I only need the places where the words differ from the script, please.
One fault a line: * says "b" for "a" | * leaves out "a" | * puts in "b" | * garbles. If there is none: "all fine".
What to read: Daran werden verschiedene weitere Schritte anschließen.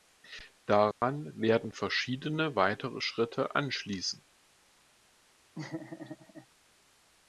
all fine